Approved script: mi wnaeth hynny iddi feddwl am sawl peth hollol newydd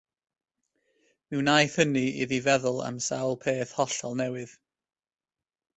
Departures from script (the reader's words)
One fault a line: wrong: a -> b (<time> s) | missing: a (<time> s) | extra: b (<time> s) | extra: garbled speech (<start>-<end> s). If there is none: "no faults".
no faults